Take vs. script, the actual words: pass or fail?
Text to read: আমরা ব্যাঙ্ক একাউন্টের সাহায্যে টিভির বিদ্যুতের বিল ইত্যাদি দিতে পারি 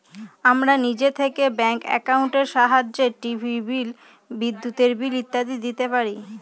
fail